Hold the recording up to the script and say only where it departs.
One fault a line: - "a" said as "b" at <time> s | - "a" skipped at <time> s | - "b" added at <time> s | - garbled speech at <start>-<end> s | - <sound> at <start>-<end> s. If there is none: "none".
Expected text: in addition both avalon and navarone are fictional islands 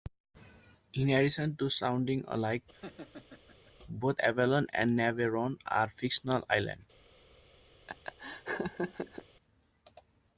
- "to sounding alike" added at 1.6 s
- laugh at 2.7-3.7 s
- laugh at 7.9-9.2 s